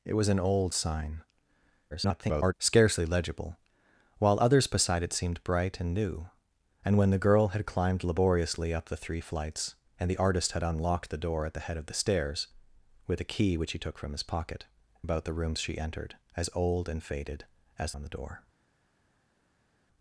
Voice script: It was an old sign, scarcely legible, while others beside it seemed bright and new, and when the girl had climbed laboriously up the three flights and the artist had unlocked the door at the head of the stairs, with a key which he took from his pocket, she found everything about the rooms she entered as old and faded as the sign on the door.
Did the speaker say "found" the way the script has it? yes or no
no